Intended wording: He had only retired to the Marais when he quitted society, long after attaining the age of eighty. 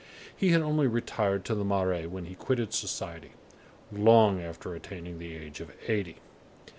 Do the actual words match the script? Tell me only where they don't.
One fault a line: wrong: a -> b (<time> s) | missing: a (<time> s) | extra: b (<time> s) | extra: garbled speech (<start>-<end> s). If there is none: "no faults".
no faults